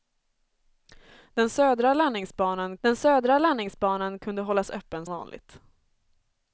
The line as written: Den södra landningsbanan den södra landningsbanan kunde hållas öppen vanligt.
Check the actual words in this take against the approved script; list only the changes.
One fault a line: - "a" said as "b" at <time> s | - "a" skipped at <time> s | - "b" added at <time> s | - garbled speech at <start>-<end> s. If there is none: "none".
none